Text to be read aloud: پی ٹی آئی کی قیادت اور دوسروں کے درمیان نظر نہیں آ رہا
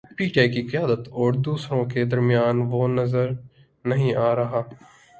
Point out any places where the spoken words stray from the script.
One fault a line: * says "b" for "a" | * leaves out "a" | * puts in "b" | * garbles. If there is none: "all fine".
* puts in "وہ"